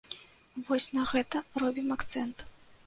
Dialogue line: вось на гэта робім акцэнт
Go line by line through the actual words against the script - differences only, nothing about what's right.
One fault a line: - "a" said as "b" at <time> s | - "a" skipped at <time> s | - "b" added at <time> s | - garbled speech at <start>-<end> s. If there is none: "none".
none